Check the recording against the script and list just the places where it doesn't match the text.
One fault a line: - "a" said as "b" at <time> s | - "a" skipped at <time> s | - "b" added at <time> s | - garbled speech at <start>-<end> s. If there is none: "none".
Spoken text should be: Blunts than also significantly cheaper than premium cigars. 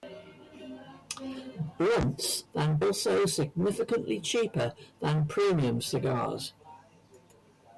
none